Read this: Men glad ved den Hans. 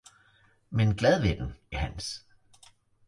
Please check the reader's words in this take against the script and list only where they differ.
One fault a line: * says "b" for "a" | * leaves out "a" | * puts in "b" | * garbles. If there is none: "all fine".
all fine